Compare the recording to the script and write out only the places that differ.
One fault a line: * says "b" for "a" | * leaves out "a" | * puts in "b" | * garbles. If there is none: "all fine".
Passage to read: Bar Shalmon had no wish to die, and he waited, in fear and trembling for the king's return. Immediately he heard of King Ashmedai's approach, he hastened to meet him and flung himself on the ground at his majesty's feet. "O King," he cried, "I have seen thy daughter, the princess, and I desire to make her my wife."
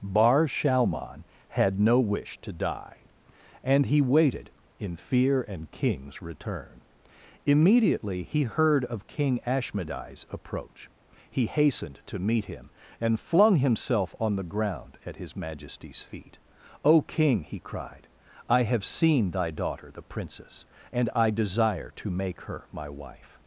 * leaves out "trembling for the"